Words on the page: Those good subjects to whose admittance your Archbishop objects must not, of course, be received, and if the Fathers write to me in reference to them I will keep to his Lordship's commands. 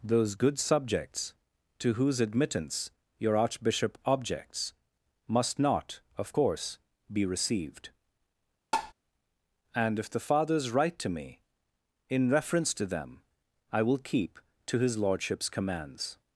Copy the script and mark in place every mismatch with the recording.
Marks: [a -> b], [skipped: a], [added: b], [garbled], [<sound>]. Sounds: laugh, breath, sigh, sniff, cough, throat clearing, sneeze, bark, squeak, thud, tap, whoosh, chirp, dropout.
Those good subjects to whose admittance your Archbishop objects must not, of course, be received, [tap] and if the Fathers write to me in reference to them I will keep to his Lordship's commands.